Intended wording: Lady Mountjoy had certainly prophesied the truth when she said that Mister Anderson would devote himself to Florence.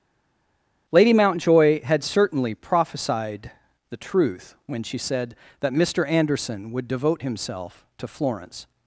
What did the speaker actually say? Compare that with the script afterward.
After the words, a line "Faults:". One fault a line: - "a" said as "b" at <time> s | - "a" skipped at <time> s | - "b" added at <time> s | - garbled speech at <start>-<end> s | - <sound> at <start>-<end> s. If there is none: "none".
Lady Mountjoy had certainly prophesied the truth when she said that Mister Anderson would devote himself to Florence.
Faults:
none